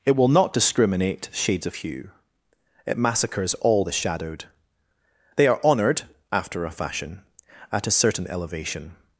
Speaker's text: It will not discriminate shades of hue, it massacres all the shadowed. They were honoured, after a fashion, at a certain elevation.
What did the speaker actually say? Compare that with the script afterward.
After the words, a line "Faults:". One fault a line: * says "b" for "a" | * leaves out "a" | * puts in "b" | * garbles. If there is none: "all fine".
It will not discriminate shades of hue, it massacres all the shadowed. They are honoured, after a fashion, at a certain elevation.
Faults:
* says "are" for "were"